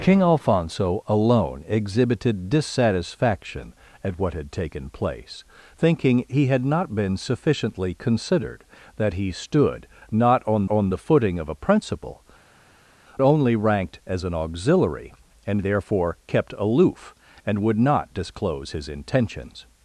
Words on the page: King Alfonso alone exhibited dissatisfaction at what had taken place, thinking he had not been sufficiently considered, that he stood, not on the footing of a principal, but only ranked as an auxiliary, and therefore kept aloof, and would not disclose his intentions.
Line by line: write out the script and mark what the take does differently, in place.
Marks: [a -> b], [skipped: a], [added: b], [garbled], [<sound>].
King Alfonso alone exhibited dissatisfaction at what had taken place, thinking he had not been sufficiently considered, that he stood, not on [added: on] the footing of a principal, [skipped: but] only ranked as an auxiliary, and therefore kept aloof, and would not disclose his intentions.